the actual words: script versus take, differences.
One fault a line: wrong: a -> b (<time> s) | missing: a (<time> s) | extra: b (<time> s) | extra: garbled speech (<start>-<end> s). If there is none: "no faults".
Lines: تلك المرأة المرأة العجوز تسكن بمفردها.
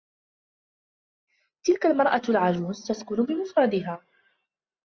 missing: المرأة (2.2 s)